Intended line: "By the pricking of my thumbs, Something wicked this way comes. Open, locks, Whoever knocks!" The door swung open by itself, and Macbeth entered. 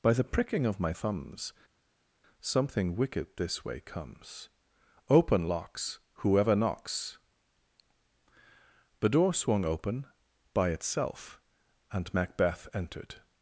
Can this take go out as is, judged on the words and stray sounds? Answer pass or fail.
pass